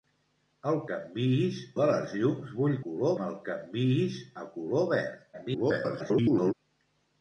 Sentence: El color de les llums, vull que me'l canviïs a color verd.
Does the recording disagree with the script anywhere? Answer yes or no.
yes